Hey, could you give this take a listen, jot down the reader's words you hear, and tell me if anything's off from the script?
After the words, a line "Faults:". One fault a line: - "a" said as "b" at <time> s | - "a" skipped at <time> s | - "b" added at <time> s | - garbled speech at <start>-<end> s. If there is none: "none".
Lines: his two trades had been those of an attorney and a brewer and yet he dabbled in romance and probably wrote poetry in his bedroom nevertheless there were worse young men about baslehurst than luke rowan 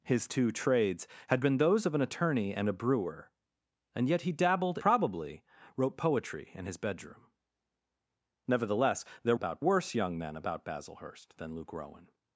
his two trades had been those of an attorney and a brewer and yet he dabbled probably wrote poetry in his bedroom nevertheless there about worse young men about baslehurst than luke rowan
Faults:
- "in romance and" skipped at 4.8 s
- "were" said as "about" at 9.3 s